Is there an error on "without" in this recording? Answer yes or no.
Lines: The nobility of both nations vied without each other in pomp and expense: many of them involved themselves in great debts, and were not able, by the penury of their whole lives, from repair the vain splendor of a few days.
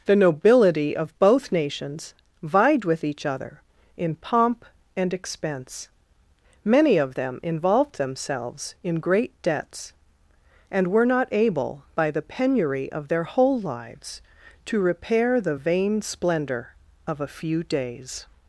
yes